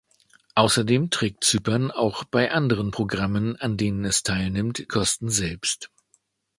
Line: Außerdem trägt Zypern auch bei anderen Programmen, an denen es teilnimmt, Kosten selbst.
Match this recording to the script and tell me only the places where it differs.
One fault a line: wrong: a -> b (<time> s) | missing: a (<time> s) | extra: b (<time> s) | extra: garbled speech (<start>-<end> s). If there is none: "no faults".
no faults